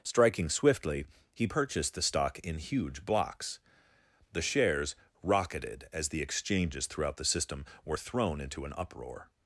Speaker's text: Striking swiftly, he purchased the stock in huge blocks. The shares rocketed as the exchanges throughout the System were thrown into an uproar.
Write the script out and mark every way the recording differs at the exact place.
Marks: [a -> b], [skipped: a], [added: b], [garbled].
Striking swiftly, he purchased the stock in huge blocks. The shares rocketed as the exchanges throughout the System were thrown into an uproar.